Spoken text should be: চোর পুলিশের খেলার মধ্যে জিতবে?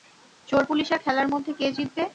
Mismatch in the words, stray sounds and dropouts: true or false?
true